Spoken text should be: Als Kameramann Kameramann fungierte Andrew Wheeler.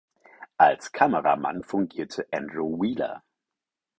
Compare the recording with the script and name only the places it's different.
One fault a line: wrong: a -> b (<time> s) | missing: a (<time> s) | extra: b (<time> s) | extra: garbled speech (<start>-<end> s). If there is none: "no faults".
missing: Kameramann (1.6 s)